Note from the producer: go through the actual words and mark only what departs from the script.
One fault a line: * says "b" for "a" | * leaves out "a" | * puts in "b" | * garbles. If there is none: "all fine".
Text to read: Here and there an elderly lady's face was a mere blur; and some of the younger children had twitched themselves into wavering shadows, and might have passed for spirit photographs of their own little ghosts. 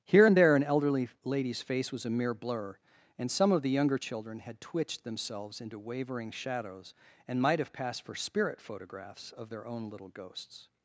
all fine